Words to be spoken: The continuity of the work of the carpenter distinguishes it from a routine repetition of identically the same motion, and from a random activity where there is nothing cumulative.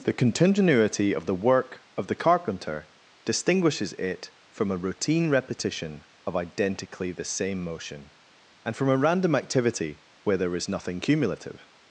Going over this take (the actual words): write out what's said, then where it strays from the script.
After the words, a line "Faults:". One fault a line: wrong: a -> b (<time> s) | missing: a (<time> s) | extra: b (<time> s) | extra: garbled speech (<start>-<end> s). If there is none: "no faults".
The continuity of the work of the carpenter distinguishes it from a routine repetition of identically the same motion, and from a random activity where there is nothing cumulative.
Faults:
no faults